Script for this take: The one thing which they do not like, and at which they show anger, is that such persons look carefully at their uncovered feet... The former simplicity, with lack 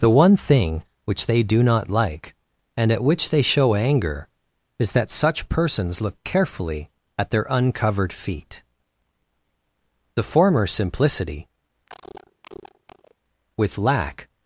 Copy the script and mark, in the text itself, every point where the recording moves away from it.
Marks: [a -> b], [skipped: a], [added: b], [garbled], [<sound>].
The one thing which they do not like, and at which they show anger, is that such persons look carefully at their uncovered feet... The former simplicity, [cough] with lack